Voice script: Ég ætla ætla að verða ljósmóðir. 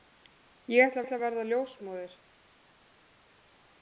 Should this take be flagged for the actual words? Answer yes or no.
no